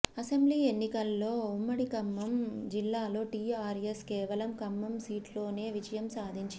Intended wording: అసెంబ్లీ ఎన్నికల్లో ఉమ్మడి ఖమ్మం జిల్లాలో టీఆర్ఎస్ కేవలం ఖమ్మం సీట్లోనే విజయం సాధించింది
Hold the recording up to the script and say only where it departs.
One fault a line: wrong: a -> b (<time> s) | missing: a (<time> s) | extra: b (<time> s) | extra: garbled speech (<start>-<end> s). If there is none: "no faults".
no faults